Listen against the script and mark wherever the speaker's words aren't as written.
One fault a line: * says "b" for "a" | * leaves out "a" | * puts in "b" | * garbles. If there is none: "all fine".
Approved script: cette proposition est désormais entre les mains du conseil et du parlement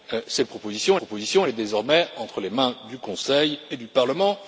* puts in "proposition"